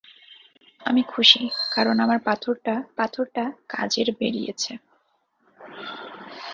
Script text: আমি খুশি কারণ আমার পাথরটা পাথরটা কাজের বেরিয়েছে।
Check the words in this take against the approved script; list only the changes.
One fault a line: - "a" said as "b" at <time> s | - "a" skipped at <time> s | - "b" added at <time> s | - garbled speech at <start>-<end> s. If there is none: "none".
none